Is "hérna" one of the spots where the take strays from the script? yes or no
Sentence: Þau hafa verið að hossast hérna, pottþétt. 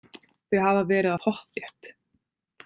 yes